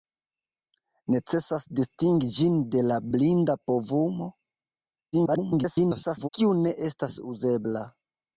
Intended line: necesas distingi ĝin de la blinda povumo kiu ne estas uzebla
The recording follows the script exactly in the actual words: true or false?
false